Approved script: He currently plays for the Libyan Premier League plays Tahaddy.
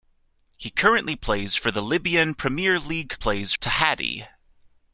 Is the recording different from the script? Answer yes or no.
no